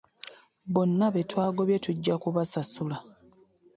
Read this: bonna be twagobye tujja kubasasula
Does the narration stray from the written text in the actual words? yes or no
no